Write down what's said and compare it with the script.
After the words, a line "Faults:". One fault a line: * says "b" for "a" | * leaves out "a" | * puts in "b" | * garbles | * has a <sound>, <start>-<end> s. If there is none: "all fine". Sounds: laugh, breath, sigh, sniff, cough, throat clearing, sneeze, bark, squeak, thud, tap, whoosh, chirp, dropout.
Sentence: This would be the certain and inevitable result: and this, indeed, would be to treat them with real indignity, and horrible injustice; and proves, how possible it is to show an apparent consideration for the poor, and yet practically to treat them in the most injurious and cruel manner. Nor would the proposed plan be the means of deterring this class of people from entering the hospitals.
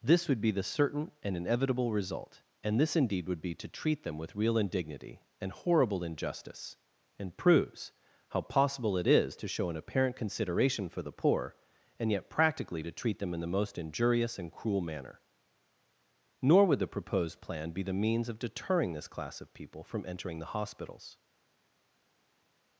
This would be the certain and inevitable result: and this, indeed, would be to treat them with real indignity, and horrible injustice; and proves, how possible it is to show an apparent consideration for the poor, and yet practically to treat them in the most injurious and cruel manner. Nor would the proposed plan be the means of deterring this class of people from entering the hospitals.
Faults:
all fine